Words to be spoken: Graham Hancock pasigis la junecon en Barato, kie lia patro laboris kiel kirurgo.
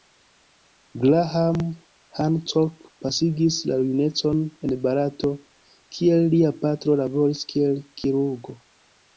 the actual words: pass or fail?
pass